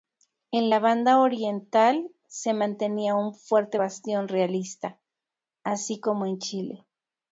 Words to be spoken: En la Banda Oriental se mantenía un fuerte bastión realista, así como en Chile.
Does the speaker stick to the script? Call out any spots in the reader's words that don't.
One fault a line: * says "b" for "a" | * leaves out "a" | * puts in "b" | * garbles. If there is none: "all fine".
all fine